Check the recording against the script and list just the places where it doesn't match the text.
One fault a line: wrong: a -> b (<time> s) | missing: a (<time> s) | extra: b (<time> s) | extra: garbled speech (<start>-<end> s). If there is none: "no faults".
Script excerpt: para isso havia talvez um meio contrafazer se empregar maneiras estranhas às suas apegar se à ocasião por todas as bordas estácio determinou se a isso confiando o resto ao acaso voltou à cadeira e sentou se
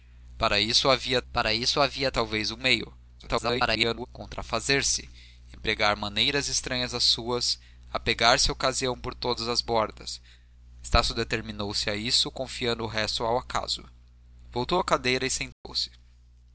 extra: para isso havia (1.3 s)
extra: garbled speech (3.2-4.1 s)